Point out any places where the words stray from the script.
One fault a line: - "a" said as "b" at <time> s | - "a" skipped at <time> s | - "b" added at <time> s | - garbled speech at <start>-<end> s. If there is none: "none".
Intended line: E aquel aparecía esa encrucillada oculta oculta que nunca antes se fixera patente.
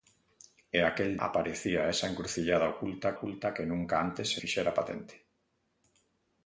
none